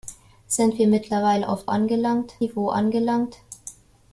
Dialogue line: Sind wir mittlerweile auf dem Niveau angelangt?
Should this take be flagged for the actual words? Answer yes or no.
yes